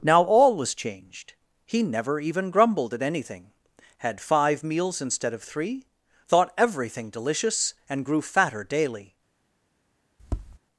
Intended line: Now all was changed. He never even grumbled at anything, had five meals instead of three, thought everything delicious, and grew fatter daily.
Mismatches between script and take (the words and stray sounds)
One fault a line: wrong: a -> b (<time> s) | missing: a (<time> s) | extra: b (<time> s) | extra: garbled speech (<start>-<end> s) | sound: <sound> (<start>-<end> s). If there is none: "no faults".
sound: tap (10.2-10.6 s)